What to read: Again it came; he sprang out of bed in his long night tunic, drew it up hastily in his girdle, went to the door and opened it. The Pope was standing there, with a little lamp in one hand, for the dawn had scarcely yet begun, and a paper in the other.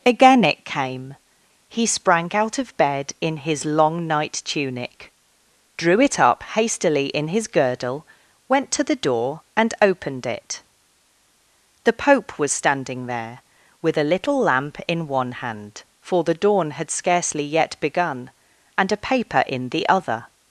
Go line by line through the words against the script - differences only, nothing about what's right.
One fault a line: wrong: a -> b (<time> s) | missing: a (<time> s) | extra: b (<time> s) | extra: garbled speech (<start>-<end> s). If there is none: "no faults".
no faults